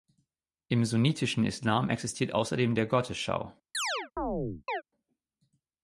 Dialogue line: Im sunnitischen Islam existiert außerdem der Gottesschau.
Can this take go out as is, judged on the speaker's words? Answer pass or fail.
pass